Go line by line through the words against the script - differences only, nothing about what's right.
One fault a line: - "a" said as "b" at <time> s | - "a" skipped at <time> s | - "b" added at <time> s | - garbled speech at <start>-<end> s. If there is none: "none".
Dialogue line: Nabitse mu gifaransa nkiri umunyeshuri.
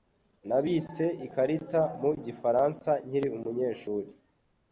- "ikarita" added at 1.2 s